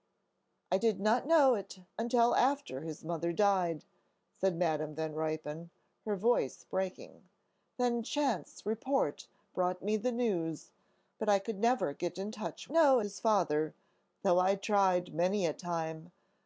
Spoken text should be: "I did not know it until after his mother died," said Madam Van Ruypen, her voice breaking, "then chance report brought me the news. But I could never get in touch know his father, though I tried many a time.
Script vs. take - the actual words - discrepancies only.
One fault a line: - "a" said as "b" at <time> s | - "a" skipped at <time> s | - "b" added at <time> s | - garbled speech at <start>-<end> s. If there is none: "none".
none